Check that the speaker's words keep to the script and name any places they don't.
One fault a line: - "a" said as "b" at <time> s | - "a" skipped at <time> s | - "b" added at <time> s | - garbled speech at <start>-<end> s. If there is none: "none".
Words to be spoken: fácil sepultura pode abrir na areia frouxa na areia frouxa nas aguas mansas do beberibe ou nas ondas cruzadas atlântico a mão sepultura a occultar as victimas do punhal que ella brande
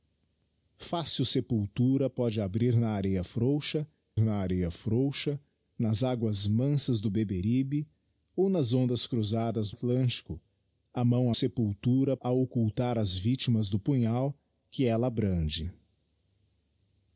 none